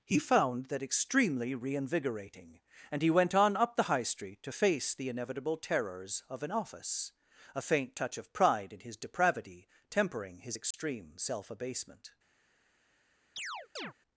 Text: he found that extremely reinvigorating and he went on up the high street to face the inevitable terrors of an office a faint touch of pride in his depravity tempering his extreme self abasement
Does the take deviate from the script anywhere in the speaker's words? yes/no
no